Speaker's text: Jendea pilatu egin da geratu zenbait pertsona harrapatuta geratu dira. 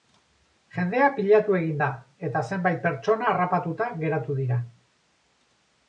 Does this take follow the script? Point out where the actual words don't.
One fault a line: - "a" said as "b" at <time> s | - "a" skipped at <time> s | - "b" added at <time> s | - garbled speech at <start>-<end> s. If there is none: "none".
- "geratu" said as "eta" at 2.3 s